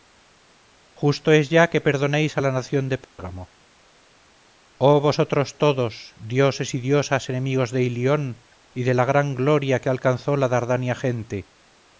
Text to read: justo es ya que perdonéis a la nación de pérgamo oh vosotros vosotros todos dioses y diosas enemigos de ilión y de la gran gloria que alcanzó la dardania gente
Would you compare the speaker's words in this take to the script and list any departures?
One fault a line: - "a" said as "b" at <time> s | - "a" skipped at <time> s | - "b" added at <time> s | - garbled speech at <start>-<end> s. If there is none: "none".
- "vosotros" skipped at 5.6 s